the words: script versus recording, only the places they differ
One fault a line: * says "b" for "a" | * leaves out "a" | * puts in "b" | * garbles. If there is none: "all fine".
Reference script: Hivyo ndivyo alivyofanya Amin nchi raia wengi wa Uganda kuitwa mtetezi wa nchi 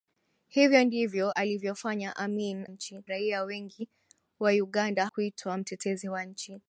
all fine